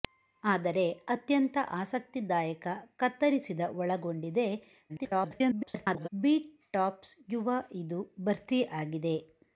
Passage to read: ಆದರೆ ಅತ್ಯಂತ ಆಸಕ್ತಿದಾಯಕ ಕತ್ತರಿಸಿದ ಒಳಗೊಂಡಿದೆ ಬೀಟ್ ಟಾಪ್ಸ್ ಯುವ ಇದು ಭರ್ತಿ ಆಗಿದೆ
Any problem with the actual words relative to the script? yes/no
yes